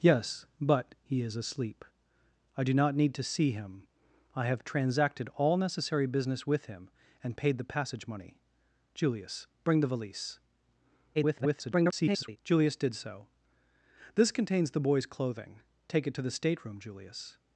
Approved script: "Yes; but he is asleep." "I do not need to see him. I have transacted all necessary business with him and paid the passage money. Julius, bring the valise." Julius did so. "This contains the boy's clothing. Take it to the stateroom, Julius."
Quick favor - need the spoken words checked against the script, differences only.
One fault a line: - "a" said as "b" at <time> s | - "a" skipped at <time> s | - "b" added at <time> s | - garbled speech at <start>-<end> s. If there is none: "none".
- garbled speech at 11.1-12.4 s